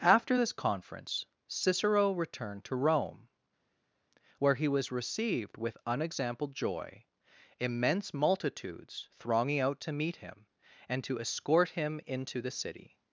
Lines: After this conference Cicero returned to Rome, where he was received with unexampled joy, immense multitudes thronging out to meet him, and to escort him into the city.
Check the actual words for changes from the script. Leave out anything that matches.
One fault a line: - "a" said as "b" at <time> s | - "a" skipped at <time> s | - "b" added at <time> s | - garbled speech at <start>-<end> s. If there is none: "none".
none